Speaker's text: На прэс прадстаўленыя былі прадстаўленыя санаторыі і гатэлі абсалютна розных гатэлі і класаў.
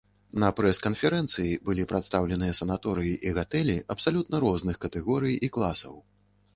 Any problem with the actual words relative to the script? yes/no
yes